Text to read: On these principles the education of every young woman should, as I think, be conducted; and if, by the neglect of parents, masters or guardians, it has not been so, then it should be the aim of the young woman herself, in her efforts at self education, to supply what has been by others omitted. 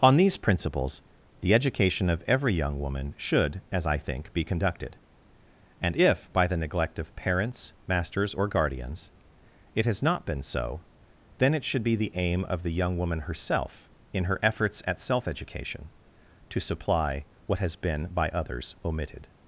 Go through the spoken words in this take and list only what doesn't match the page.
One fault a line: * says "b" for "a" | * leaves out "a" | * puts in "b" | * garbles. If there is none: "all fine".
all fine